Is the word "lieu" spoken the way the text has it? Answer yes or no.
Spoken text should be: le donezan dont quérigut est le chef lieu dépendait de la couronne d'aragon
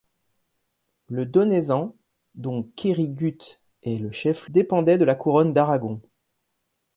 no